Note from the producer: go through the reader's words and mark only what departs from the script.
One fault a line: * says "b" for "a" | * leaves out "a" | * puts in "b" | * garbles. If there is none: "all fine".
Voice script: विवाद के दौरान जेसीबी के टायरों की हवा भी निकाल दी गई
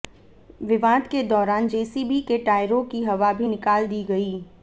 all fine